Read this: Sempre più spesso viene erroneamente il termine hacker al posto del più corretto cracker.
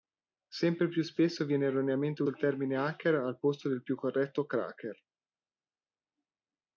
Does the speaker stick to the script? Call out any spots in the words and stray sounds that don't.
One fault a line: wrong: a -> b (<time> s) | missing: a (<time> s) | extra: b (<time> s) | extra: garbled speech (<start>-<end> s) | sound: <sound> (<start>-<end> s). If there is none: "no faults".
no faults